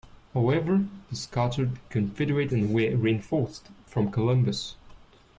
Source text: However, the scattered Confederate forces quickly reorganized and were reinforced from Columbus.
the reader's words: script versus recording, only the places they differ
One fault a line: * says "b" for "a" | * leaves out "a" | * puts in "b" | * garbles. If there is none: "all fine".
* leaves out "forces quickly reorganized"